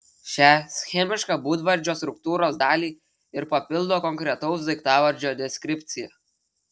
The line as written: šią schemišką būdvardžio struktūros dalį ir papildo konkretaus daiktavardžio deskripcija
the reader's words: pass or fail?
pass